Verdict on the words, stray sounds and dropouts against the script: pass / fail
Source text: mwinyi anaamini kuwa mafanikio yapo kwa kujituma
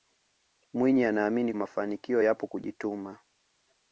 fail